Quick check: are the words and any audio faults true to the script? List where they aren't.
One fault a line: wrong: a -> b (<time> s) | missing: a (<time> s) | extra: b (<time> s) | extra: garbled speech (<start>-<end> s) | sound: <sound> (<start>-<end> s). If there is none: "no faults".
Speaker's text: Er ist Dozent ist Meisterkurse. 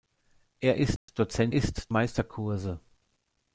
sound: dropout (1.0-1.1 s)